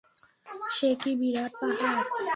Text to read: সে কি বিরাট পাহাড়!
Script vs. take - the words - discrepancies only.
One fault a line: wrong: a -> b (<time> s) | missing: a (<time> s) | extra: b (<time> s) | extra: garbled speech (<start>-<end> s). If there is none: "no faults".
no faults